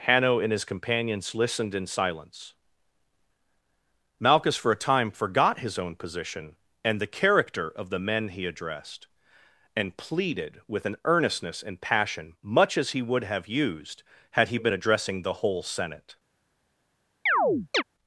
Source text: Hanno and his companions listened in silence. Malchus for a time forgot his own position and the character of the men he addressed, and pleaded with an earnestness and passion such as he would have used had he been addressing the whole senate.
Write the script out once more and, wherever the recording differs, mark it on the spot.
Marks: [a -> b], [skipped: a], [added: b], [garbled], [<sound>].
Hanno and his companions listened in silence. Malchus for a time forgot his own position and the character of the men he addressed, and pleaded with an earnestness and passion [such -> much] as he would have used had he been addressing the whole senate. [chirp]